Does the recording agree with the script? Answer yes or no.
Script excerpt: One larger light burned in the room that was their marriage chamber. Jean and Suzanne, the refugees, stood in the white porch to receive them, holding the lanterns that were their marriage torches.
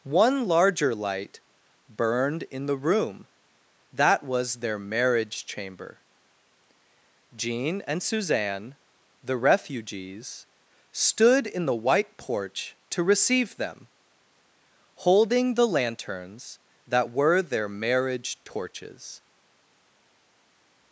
yes